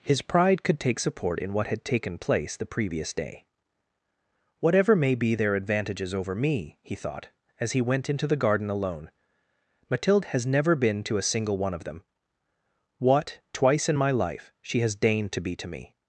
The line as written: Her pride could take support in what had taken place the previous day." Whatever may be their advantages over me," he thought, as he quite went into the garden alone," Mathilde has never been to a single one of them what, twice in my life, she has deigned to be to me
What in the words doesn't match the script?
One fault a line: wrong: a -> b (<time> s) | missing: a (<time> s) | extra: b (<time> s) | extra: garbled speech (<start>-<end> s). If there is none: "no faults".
wrong: Her -> His (0.0 s)
missing: quite (7.8 s)